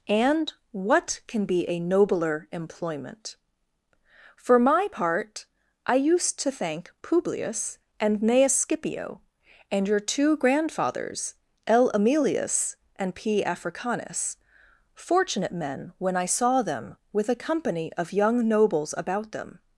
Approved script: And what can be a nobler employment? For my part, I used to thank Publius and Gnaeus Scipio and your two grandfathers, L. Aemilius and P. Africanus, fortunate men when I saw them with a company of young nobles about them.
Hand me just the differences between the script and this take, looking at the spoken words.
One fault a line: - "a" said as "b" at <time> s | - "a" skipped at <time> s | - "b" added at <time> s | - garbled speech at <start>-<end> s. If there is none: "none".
none